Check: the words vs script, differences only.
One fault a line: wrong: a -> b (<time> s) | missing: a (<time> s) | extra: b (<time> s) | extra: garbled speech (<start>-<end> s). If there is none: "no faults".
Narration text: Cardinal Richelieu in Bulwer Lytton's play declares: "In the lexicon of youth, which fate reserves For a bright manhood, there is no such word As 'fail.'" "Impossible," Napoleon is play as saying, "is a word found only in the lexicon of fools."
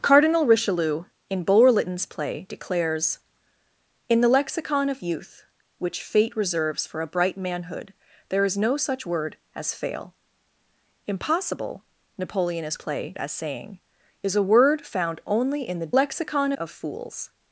no faults